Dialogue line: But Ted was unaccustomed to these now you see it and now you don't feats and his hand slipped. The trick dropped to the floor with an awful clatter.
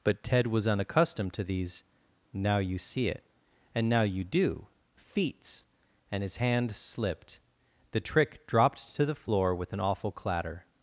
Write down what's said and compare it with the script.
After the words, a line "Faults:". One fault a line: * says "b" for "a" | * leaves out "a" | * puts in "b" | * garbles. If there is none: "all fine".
But Ted was unaccustomed to these now you see it and now you do feats and his hand slipped. The trick dropped to the floor with an awful clatter.
Faults:
* says "do" for "don't"